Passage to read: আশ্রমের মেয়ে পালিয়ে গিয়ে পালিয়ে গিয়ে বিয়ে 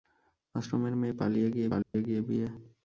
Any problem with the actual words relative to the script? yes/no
no